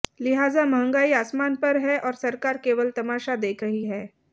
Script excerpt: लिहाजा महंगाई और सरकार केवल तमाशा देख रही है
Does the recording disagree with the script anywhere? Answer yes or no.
yes